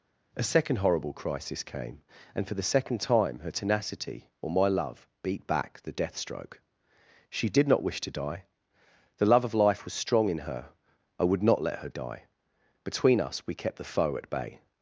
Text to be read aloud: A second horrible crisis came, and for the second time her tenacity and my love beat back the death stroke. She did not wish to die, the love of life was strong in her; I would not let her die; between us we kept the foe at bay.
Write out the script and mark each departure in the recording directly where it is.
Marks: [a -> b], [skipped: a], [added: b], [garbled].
A second horrible crisis came, and for the second time her tenacity [and -> or] my love beat back the death stroke. She did not wish to die, the love of life was strong in her; I would not let her die; between us we kept the foe at bay.